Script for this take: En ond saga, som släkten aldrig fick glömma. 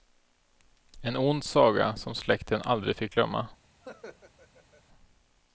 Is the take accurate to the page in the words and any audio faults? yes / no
no